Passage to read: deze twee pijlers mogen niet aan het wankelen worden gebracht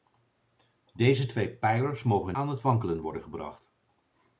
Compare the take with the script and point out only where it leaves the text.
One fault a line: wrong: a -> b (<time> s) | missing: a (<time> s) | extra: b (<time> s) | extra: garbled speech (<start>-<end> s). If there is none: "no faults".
missing: niet (2.4 s)